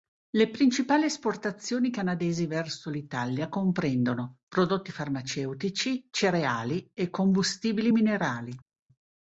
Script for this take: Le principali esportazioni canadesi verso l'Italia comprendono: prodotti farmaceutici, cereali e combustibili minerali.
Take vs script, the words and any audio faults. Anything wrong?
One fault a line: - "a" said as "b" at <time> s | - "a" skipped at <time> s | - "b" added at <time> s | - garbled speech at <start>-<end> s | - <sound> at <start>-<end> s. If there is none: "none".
none